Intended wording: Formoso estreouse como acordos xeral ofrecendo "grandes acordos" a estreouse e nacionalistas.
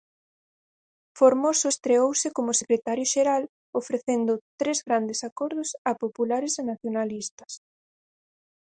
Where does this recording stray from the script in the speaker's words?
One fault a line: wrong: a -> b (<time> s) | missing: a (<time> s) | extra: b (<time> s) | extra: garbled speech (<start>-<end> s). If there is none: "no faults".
wrong: acordos -> secretario (2.6 s)
extra: tres (4.6 s)
wrong: estreouse -> populares (6.0 s)